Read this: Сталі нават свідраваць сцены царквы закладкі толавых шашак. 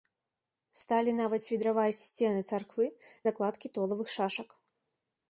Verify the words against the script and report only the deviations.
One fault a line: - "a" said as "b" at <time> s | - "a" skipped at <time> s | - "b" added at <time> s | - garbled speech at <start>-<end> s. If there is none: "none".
none